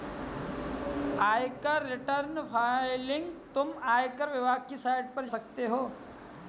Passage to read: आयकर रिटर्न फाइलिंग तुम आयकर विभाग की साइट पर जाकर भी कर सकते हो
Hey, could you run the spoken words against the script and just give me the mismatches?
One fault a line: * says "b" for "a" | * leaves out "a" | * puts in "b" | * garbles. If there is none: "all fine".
* leaves out "जाकर भी कर"